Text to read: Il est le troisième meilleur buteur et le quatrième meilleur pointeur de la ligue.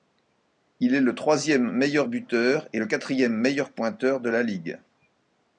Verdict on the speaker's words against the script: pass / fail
pass